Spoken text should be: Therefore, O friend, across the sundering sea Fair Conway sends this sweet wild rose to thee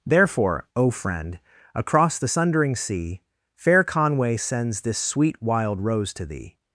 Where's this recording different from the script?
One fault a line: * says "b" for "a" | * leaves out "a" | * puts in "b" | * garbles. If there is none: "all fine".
all fine